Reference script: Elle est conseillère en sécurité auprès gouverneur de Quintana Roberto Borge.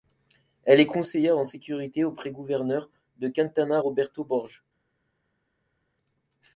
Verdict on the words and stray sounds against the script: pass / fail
pass